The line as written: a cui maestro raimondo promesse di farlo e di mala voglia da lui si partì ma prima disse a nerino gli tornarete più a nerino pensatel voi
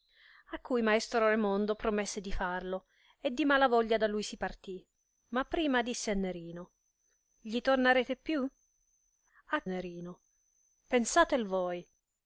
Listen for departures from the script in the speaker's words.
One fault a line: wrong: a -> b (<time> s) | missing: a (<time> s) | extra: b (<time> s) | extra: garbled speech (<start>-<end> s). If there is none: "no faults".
no faults